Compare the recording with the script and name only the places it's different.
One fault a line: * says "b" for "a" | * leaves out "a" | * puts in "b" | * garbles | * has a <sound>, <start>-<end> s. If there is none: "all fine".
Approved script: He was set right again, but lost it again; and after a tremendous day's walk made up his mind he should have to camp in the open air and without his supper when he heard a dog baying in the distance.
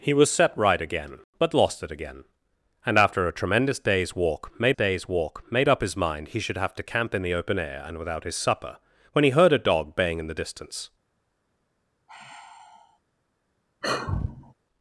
* puts in "day's walk made"
* has a sigh, 12.1-13.0 s
* has a sigh, 13.8-14.5 s